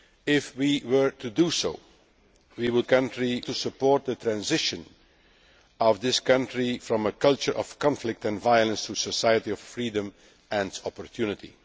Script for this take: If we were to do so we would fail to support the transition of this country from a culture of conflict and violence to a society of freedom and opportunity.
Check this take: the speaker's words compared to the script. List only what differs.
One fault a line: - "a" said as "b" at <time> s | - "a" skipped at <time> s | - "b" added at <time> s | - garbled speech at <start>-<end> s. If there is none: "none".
- "fail" said as "country" at 2.8 s